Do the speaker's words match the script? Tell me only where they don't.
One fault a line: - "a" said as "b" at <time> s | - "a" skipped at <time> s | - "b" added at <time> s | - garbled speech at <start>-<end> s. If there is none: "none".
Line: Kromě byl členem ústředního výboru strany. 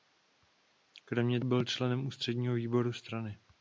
none